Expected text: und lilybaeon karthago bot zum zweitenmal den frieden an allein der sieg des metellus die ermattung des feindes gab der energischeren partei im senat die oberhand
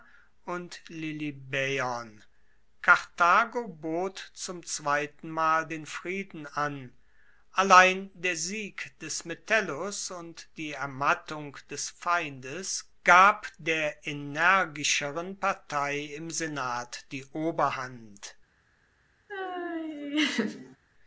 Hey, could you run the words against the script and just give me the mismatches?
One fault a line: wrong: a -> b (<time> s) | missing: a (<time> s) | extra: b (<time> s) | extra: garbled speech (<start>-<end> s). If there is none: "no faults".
extra: und (10.1 s)